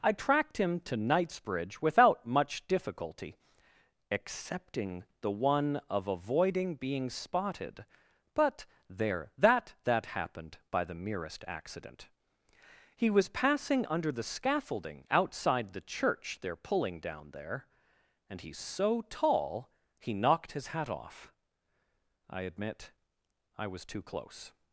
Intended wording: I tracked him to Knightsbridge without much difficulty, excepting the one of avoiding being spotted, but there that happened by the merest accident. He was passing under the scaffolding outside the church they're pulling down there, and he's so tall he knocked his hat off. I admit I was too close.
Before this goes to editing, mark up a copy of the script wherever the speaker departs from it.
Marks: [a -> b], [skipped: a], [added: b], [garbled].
I tracked him to Knightsbridge without much difficulty, excepting the one of avoiding being spotted, but there that [added: that] happened by the merest accident. He was passing under the scaffolding outside the church they're pulling down there, and he's so tall he knocked his hat off. I admit I was too close.